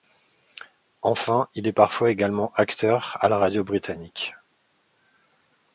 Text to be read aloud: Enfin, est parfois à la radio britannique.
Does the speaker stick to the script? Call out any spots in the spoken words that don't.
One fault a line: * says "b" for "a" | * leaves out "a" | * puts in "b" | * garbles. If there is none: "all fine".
* puts in "il"
* puts in "également acteur"